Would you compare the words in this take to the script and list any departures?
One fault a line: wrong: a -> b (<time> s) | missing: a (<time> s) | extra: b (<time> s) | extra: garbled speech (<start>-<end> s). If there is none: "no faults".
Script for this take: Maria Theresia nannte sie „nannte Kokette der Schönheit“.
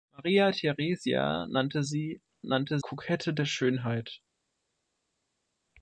no faults